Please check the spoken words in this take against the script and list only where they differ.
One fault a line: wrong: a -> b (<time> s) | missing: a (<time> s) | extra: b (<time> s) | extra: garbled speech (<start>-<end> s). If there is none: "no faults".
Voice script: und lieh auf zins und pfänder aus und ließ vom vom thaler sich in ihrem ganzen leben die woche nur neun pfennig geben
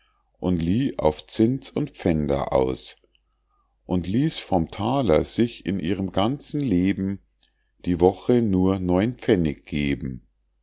missing: vom (4.7 s)